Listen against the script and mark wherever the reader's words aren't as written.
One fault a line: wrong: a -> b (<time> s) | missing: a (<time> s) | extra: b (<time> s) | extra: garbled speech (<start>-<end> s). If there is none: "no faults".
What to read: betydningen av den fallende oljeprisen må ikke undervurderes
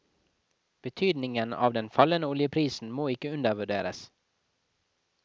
no faults